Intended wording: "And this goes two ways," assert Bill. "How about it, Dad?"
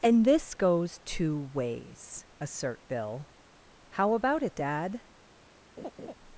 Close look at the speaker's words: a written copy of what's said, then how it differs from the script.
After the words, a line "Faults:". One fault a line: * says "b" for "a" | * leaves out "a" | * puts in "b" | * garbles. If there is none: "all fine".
"And this goes two ways," assert Bill. "How about it, Dad?"
Faults:
all fine